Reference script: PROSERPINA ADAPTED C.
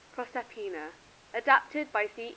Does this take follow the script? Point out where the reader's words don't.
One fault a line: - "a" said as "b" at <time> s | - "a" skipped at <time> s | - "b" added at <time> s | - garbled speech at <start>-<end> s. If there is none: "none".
- "BY" added at 1.9 s